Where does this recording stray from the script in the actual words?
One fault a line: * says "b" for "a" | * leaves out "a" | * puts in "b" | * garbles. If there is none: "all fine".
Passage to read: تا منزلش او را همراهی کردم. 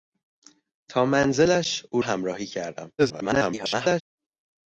* leaves out "را"
* garbles